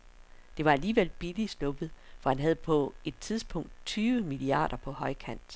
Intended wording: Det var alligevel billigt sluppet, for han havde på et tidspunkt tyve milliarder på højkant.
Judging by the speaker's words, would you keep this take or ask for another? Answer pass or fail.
pass